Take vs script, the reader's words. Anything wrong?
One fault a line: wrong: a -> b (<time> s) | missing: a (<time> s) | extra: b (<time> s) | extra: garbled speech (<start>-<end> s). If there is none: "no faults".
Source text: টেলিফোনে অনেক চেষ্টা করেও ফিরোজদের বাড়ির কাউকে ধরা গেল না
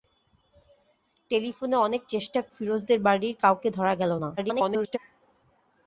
missing: করেও (2.4 s)
extra: garbled speech (4.4-5.0 s)